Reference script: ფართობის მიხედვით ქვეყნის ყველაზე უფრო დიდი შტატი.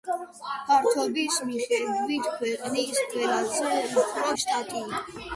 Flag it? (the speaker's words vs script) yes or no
yes